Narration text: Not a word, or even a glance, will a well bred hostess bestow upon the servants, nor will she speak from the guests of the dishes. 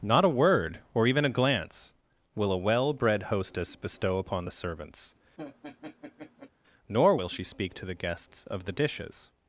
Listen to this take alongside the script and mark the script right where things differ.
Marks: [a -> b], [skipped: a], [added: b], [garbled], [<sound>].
Not a word, or even a glance, will a well bred hostess bestow upon the servants, [laugh] nor will she speak [from -> to] the guests of the dishes.